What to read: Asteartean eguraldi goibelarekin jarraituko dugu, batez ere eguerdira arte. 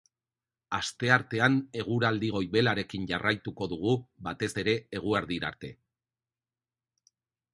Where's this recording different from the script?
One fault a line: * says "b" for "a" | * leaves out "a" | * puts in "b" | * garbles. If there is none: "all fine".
all fine